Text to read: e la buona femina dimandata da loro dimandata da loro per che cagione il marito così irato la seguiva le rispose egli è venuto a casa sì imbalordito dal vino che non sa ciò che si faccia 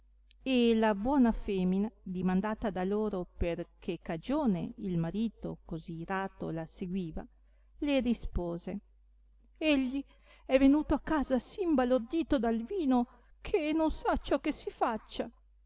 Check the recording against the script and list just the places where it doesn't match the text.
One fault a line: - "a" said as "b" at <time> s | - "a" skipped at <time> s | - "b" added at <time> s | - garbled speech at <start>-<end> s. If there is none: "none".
- "dimandata da loro" skipped at 3.3 s